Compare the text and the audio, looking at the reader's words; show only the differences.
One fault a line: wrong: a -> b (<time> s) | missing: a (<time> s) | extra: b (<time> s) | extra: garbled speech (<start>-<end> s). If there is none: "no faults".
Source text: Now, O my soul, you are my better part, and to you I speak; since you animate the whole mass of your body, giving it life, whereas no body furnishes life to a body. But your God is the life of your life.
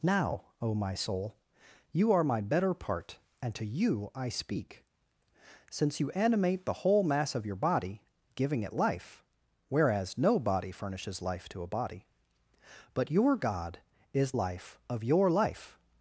missing: the (14.3 s)